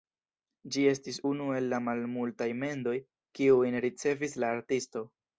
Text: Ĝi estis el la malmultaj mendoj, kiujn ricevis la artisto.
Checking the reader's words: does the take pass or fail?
fail